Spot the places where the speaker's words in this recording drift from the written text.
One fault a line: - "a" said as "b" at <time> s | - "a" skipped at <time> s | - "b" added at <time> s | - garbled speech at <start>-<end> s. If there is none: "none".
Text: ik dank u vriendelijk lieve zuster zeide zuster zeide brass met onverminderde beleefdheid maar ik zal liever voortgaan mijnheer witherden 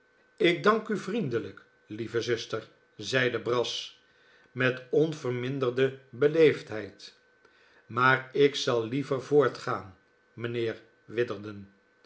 - "zuster zeide" skipped at 3.4 s